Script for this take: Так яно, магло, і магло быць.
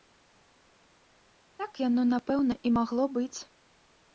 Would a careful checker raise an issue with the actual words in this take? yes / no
yes